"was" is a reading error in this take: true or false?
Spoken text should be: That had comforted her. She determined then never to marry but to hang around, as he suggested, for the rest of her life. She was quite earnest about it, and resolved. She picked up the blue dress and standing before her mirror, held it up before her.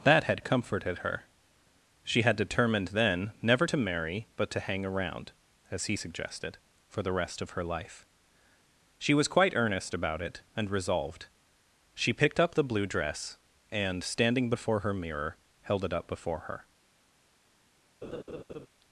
false